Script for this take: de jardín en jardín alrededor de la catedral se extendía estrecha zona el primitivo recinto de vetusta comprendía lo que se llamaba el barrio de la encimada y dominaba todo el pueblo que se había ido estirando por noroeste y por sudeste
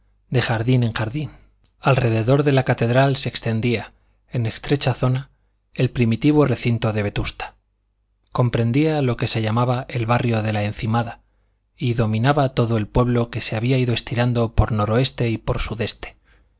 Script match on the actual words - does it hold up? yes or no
no